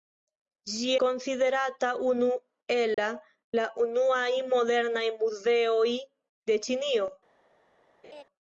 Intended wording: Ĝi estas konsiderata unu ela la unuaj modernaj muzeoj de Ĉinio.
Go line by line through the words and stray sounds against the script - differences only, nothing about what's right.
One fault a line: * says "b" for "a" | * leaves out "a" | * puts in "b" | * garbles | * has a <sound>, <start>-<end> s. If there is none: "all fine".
* leaves out "estas"
* has a dropout, 2.9-3.0 s
* has a laugh, 8.0-8.2 s